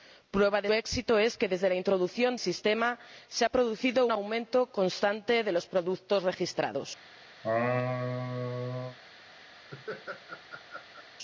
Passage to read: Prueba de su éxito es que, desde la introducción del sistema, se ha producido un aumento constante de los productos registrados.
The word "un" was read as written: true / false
false